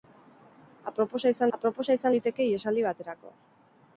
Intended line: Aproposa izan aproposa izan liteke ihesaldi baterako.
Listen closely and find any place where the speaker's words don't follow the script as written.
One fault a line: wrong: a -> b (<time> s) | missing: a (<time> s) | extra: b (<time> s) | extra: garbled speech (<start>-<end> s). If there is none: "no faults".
no faults